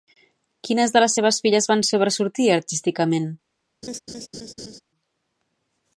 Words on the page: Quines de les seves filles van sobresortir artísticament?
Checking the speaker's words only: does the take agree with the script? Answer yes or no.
yes